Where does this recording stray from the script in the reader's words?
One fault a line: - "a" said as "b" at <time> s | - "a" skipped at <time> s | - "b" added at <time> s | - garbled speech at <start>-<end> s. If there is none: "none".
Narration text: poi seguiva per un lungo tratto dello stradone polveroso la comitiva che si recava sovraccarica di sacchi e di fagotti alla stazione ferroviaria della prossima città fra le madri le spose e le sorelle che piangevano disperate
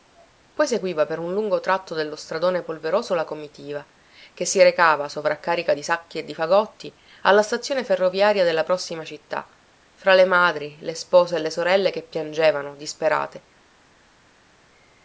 none